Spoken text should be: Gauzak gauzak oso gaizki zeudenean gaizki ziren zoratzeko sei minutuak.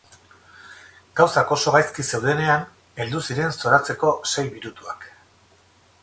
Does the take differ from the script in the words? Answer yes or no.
yes